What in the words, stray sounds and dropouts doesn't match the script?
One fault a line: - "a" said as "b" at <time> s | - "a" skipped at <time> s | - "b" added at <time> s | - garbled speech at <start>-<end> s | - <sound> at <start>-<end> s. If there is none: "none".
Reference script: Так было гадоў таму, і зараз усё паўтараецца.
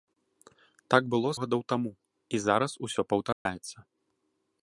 - dropout at 3.3-3.5 s